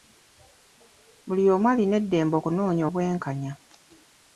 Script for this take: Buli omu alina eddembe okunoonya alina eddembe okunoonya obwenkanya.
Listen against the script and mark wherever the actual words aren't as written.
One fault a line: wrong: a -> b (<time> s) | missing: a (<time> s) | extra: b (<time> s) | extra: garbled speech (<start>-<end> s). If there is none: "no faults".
missing: alina eddembe okunoonya (2.8 s)